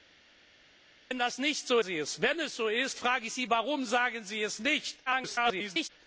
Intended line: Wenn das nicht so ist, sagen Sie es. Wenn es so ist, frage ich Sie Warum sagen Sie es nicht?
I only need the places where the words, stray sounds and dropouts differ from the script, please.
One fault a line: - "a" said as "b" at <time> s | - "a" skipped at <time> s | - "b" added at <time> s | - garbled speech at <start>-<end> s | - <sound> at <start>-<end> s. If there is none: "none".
- "ist sagen" skipped at 1.8 s
- garbled speech at 5.1-5.9 s